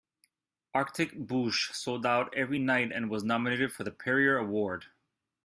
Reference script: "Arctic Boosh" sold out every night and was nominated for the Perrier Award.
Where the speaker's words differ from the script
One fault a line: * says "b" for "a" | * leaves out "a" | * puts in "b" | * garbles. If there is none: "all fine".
all fine